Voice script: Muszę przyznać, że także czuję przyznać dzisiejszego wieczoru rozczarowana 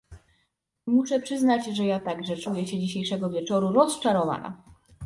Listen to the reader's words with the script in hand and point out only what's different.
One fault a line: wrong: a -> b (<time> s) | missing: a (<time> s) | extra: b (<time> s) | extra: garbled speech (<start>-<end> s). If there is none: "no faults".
extra: ja (1.9 s)
wrong: przyznać -> się (2.7 s)